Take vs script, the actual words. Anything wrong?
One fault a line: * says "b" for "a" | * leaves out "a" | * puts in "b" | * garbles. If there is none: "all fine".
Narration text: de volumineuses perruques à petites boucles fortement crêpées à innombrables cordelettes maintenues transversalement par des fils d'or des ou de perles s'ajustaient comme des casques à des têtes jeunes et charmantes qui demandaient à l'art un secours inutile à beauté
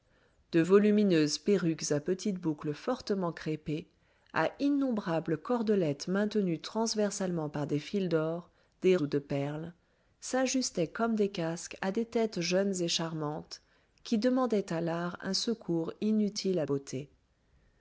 all fine